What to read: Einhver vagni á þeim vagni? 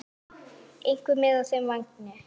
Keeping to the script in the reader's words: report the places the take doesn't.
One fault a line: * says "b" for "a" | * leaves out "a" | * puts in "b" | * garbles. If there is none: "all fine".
* says "með" for "vagni"